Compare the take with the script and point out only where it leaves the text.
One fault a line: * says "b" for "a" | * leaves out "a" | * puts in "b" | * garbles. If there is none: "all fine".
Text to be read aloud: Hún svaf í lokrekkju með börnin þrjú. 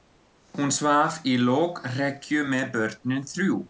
all fine